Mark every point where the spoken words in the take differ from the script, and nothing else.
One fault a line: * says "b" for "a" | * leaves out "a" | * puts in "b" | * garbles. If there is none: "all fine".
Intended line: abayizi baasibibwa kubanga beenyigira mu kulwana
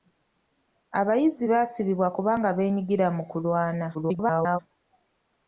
* garbles